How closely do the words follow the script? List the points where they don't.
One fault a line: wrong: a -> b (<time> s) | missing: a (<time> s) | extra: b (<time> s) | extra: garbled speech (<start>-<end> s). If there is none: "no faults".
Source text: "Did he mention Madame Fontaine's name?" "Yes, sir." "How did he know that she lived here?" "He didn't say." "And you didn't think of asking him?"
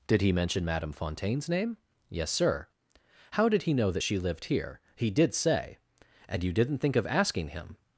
wrong: didn't -> did (5.1 s)